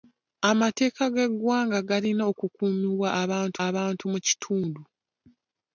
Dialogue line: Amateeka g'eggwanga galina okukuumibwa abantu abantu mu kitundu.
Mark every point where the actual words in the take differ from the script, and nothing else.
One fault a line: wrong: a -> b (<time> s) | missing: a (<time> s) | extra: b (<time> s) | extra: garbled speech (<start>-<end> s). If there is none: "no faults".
no faults